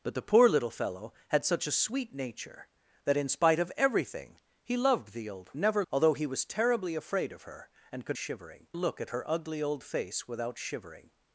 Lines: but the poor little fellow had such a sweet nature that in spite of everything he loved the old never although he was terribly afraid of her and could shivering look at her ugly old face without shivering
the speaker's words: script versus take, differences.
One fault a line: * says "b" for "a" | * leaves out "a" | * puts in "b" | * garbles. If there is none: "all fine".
all fine